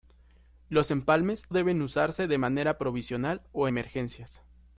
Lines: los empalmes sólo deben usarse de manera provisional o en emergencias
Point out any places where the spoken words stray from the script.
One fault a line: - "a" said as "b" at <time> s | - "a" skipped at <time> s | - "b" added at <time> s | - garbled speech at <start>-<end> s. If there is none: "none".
- "sólo" skipped at 1.5 s
- "en" skipped at 3.7 s